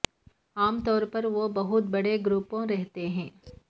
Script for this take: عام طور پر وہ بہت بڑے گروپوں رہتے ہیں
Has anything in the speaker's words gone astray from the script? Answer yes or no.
no